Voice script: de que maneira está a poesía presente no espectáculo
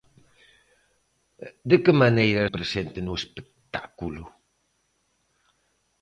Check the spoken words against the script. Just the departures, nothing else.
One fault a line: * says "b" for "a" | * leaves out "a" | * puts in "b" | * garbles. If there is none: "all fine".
* leaves out "está a poesía"